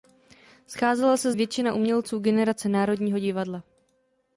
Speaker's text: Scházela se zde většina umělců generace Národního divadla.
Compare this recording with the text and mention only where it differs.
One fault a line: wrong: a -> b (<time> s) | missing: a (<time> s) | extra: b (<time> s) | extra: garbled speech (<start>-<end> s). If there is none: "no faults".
missing: zde (1.3 s)